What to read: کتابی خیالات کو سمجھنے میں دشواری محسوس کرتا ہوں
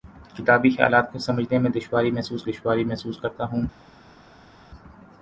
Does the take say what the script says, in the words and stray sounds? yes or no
no